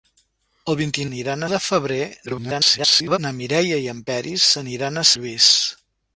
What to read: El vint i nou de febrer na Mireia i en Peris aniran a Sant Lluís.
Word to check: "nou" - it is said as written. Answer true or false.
false